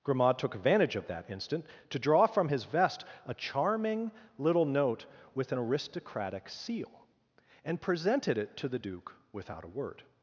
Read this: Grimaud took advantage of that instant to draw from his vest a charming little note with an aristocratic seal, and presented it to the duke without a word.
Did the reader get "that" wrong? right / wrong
right